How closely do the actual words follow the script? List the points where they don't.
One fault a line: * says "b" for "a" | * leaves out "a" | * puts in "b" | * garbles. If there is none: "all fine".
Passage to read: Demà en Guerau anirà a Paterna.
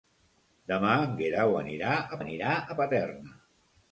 * puts in "anirà a"